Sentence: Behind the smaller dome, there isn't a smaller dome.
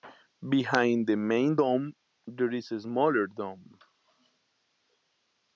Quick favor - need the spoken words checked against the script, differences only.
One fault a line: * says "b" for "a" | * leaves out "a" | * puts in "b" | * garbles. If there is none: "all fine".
* says "main" for "smaller"
* says "is" for "isn't"